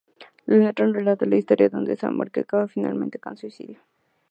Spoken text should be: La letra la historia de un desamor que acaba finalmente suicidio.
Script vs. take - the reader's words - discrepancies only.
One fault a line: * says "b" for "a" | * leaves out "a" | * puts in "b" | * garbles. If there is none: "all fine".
* puts in "relata"
* puts in "con"